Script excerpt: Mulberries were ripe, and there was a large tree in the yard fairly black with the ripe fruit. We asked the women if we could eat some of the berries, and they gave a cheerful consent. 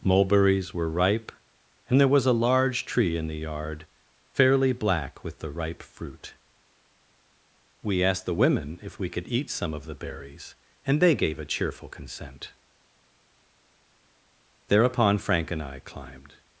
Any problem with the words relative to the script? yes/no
yes